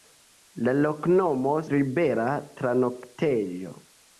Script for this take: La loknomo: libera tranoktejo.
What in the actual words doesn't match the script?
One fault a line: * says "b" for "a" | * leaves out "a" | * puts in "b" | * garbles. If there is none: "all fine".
all fine